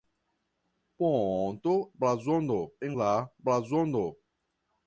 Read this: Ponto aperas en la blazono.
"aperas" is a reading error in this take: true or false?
true